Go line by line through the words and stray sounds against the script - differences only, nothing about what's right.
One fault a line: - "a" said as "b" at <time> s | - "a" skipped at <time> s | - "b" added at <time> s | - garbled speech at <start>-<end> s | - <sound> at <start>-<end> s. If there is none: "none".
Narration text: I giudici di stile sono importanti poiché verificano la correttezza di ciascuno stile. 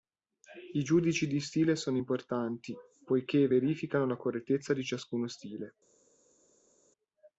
none